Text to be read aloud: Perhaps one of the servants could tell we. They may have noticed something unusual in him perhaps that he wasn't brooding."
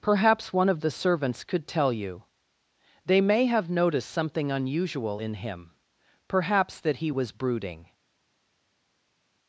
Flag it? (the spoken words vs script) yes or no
yes